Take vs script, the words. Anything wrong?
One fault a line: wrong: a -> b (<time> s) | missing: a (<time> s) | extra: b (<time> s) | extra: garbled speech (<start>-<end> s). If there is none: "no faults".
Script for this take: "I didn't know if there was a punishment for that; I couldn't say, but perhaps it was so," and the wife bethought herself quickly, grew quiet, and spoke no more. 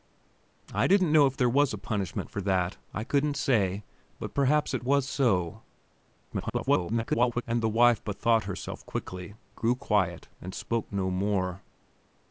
extra: garbled speech (6.3-7.4 s)